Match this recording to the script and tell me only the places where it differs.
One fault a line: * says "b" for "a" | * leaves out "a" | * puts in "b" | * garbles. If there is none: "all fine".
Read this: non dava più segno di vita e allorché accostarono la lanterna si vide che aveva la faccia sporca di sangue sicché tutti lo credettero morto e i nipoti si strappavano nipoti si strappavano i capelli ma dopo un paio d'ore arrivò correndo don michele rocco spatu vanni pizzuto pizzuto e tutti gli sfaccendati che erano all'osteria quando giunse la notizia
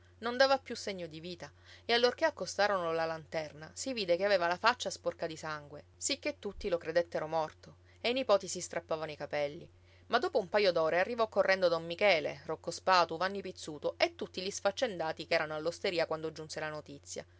* leaves out "nipoti si strappavano"
* leaves out "pizzuto"